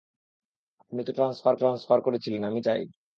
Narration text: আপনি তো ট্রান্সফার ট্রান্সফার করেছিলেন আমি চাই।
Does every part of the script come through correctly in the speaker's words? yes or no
yes